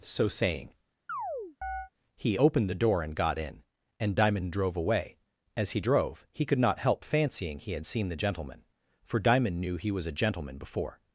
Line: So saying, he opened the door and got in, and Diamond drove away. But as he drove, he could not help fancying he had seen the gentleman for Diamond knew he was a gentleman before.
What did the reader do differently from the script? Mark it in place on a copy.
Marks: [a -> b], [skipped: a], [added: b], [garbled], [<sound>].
So saying, [chirp] he opened the door and got in, and Diamond drove away. [skipped: But] as he drove, he could not help fancying he had seen the gentleman for Diamond knew he was a gentleman before.